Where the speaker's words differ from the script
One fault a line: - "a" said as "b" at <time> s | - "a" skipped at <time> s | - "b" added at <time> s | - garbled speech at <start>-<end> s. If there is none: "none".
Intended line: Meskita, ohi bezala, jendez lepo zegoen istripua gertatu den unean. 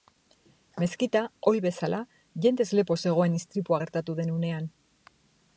none